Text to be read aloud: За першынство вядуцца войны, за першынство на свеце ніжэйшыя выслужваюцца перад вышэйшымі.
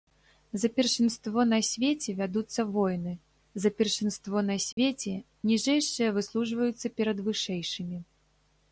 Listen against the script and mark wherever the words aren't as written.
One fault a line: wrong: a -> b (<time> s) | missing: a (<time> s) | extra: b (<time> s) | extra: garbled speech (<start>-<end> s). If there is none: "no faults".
extra: на свеце (1.5 s)